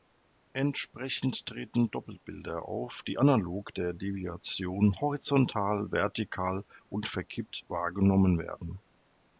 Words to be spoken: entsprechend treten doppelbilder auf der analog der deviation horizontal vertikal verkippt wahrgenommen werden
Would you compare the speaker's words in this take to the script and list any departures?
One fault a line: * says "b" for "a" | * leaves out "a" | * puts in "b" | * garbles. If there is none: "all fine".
* says "die" for "der"
* puts in "und"